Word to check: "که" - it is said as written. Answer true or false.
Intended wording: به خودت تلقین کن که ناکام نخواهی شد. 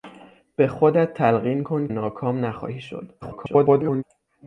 false